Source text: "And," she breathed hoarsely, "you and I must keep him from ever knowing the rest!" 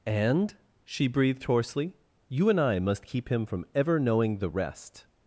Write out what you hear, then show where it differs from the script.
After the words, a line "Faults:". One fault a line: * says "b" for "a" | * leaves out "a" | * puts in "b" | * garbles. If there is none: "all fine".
"And," she breathed hoarsely, "you and I must keep him from ever knowing the rest!"
Faults:
all fine